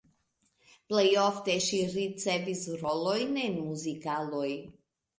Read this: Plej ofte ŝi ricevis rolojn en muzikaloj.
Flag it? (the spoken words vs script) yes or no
no